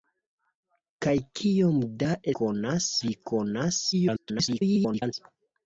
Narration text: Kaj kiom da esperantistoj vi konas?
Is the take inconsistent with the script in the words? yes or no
yes